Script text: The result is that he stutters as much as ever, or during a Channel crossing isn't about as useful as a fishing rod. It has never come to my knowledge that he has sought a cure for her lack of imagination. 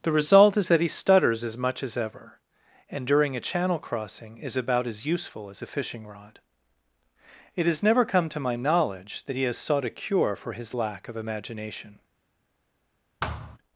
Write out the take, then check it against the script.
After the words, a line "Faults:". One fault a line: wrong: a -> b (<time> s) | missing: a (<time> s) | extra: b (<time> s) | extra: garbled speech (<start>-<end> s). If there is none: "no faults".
The result is that he stutters as much as ever, and during a Channel crossing is about as useful as a fishing rod. It has never come to my knowledge that he has sought a cure for his lack of imagination.
Faults:
wrong: or -> and (2.9 s)
wrong: isn't -> is (4.4 s)
wrong: her -> his (10.5 s)